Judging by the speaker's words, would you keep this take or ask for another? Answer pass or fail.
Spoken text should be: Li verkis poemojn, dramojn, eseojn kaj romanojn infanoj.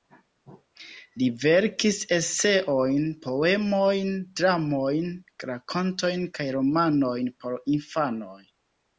fail